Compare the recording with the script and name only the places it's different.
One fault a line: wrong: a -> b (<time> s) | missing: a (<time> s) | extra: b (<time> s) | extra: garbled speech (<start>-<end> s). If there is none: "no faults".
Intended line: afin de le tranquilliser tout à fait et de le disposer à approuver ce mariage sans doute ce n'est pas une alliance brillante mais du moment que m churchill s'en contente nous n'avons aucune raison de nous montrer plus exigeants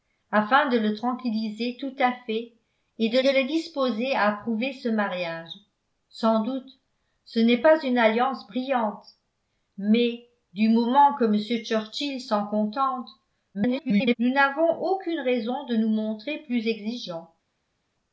extra: de (3.2 s)
extra: garbled speech (13.5-14.2 s)